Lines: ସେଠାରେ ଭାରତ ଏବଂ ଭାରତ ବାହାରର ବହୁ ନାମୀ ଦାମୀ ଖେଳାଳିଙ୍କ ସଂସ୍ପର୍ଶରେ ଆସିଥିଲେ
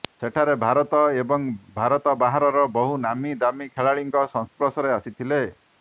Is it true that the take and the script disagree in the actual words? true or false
false